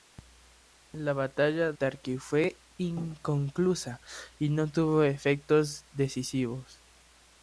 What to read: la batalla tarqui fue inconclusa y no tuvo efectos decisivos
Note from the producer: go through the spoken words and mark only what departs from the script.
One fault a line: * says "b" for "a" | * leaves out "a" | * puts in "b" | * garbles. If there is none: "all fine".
all fine